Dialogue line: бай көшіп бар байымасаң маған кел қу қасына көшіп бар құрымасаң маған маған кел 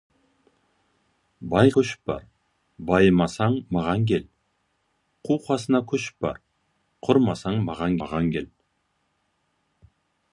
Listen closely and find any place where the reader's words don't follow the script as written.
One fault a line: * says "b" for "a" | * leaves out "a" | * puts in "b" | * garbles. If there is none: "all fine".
all fine